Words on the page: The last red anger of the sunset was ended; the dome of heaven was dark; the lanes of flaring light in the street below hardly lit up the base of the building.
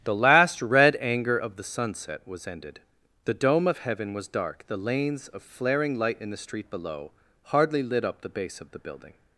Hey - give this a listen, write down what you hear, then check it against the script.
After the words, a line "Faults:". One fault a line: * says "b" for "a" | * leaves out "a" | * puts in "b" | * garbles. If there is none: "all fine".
The last red anger of the sunset was ended; the dome of heaven was dark; the lanes of flaring light in the street below hardly lit up the base of the building.
Faults:
all fine